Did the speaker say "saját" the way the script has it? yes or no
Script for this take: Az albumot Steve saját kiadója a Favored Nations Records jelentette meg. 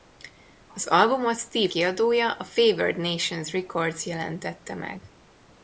no